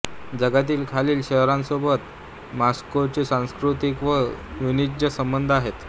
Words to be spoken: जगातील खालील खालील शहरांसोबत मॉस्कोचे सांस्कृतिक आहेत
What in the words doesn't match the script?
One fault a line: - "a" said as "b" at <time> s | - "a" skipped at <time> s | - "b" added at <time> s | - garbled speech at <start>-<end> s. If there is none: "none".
- "खालील" skipped at 1.2 s
- "व वाणिज्य संबंध" added at 4.0 s